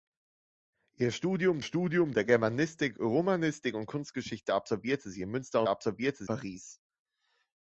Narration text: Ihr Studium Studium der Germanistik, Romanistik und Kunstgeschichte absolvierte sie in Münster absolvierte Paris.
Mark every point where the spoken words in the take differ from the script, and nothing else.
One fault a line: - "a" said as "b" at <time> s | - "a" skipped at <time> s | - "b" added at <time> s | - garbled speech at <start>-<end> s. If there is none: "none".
none